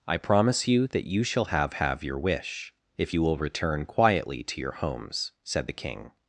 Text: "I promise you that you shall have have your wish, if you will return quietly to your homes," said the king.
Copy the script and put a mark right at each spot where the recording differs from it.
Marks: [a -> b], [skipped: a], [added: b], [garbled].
"I promise you that you shall have have your wish, if you will return quietly to your homes," said the king.